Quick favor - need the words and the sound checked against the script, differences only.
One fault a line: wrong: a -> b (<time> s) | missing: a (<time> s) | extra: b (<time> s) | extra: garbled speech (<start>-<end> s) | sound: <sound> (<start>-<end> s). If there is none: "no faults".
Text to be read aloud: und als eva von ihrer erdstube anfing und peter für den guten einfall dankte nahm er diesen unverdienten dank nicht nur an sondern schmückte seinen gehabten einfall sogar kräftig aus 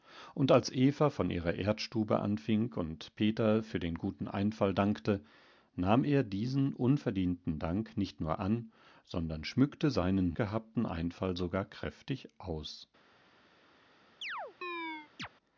sound: chirp (14.2-15.3 s)